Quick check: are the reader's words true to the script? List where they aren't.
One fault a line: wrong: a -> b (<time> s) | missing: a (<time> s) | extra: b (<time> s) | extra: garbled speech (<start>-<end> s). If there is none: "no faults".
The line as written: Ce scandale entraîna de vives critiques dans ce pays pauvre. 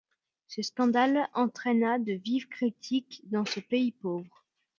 no faults